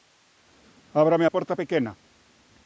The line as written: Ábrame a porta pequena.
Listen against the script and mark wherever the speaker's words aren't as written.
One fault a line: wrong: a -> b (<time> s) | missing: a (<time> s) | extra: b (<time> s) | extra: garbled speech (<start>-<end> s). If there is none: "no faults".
no faults